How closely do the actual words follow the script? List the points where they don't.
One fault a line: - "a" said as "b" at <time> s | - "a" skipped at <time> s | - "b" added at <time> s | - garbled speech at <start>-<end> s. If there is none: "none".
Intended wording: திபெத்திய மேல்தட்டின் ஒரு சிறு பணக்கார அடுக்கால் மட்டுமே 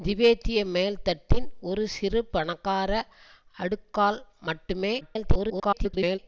- garbled speech at 5.0-6.2 s